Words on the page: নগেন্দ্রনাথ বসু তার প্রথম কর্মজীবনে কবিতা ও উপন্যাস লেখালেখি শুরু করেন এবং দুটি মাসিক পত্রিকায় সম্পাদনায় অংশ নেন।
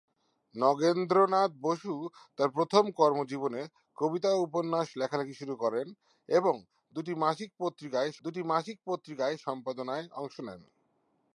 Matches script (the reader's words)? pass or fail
fail